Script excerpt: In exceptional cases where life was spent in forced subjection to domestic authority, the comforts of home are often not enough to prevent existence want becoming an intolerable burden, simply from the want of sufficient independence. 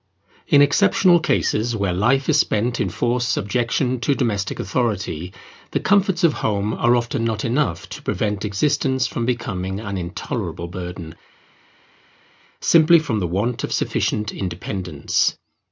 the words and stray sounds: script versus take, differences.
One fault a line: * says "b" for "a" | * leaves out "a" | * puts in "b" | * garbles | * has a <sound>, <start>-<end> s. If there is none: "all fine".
* says "is" for "was"
* says "from" for "want"